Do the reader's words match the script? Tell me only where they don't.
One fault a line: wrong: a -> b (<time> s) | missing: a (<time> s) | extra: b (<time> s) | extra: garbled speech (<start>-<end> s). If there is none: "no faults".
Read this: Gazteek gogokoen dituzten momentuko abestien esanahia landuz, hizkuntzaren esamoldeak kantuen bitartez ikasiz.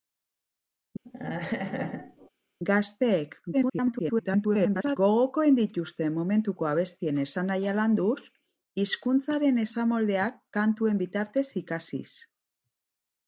extra: garbled speech (3.5-5.0 s)